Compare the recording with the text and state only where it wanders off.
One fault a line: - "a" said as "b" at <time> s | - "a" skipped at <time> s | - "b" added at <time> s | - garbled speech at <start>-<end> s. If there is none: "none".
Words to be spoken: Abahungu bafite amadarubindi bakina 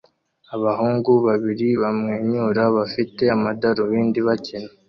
- "babiri bamwenyura" added at 1.3 s